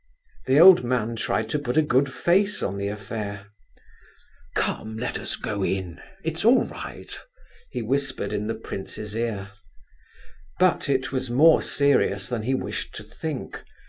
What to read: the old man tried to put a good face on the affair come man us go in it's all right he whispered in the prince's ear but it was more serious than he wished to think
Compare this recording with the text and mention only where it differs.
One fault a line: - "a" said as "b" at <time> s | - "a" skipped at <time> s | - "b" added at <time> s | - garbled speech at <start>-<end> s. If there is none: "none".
- "man" said as "let" at 5.0 s